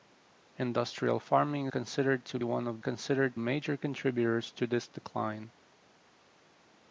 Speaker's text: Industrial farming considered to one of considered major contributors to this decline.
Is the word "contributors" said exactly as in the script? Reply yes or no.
yes